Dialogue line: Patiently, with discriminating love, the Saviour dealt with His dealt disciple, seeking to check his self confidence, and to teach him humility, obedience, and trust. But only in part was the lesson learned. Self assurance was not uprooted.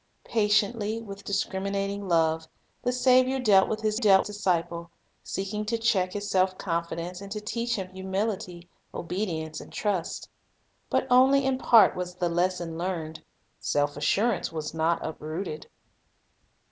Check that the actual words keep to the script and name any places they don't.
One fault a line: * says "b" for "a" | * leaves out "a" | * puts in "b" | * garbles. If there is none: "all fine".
all fine